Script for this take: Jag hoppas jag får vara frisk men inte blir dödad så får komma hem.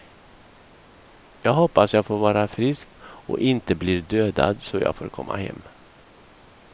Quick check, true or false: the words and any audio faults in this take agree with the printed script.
false